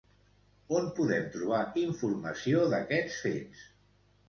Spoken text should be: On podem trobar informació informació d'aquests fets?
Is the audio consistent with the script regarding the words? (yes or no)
no